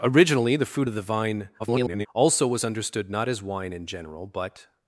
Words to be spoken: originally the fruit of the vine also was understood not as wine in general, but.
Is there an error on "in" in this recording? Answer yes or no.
no